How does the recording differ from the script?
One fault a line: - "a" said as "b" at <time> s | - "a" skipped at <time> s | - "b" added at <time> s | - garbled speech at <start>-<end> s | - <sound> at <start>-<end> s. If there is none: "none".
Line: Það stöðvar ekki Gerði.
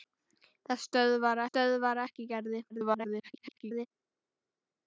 - "stöðvar" added at 1.5 s
- garbled speech at 2.7-3.9 s